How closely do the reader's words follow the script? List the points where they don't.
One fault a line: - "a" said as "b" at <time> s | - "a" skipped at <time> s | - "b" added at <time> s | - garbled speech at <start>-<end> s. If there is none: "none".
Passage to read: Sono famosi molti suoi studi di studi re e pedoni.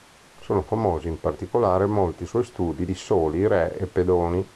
- "in particolare" added at 1.1 s
- "studi" said as "soli" at 2.9 s